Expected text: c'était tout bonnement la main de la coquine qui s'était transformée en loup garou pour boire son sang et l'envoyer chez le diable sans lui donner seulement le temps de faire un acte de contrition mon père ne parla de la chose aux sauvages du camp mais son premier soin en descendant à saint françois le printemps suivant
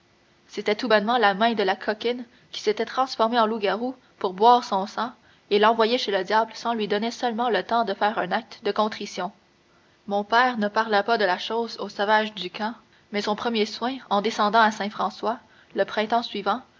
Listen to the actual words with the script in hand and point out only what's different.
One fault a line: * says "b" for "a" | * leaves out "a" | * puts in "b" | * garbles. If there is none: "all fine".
* puts in "pas"